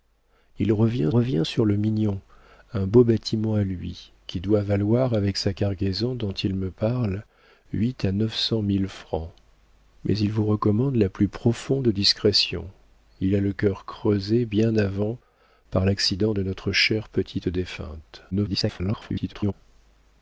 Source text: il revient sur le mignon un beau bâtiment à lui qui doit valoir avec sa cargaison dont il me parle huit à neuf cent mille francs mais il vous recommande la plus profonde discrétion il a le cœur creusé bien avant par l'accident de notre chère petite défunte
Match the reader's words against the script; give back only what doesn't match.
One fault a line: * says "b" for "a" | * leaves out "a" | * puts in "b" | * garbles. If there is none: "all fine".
* puts in "revient"
* garbles